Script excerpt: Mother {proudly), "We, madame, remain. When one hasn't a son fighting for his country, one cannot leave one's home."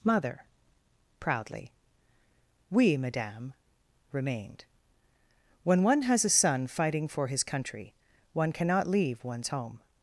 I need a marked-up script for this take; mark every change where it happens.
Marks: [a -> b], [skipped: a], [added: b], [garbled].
Mother {proudly), "We, madame, [remain. -> remained] When one [hasn't -> has] a son fighting for his country, one cannot leave one's home."